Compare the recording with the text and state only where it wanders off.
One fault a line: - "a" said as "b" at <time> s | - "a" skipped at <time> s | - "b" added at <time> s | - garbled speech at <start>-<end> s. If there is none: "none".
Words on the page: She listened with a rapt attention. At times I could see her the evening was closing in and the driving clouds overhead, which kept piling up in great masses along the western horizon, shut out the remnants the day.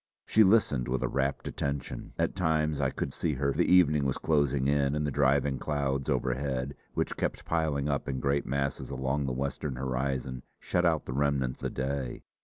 none